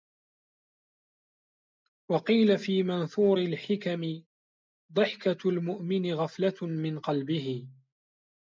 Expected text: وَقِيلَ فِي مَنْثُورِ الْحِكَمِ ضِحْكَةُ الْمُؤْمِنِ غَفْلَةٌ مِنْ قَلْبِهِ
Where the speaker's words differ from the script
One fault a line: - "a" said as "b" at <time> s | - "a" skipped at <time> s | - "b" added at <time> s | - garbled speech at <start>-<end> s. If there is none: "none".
none